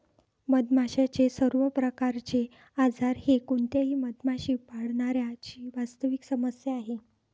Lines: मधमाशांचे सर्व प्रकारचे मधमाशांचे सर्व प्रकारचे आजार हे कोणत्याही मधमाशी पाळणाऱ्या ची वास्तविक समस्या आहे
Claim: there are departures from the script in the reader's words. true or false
true